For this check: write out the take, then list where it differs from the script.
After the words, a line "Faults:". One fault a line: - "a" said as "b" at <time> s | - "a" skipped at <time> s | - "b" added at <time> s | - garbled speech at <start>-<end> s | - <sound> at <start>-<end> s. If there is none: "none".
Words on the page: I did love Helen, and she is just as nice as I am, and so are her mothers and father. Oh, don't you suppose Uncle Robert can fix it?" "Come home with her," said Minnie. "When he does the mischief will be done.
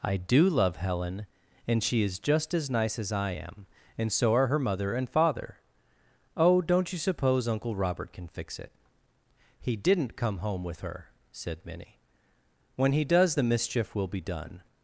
I do love Helen, and she is just as nice as I am, and so are her mother and father. Oh, don't you suppose Uncle Robert can fix it?" "He didn't come home with her," said Minnie. "When he does the mischief will be done.
Faults:
- "did" said as "do" at 0.2 s
- "mothers" said as "mother" at 4.6 s
- "He didn't" added at 9.6 s